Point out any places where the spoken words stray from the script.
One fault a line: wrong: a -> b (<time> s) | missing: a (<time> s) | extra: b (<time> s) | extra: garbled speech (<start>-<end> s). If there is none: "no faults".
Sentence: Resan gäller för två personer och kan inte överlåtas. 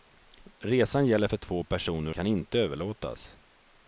missing: och (2.1 s)